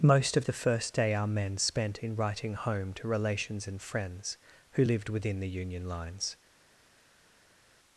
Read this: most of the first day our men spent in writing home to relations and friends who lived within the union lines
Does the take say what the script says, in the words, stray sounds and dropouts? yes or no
yes